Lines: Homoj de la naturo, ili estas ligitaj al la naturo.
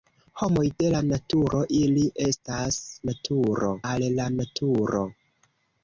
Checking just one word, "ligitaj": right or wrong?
wrong